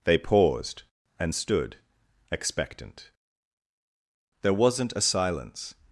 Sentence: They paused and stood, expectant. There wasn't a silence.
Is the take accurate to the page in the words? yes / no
yes